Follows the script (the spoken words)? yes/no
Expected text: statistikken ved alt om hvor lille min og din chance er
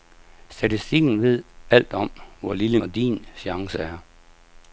no